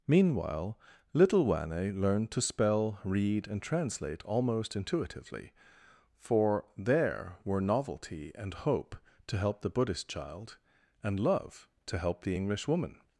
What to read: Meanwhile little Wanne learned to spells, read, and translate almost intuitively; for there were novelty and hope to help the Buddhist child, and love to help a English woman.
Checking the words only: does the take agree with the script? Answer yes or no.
no